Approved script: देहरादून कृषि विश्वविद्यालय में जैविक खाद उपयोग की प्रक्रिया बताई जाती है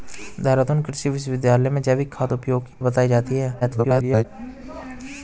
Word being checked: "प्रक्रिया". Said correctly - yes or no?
no